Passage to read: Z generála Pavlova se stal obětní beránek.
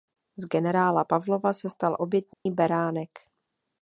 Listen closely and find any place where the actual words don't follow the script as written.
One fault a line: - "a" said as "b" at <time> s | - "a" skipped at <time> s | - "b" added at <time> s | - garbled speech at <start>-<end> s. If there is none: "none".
none